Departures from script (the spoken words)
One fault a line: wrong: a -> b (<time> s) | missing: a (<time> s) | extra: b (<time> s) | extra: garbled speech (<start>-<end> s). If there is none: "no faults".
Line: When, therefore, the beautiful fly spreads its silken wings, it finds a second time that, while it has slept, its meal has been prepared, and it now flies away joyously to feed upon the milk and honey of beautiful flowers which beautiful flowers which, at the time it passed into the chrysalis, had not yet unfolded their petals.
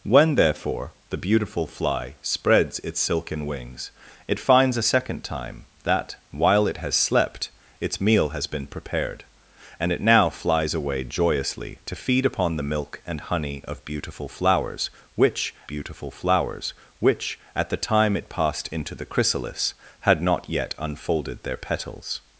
no faults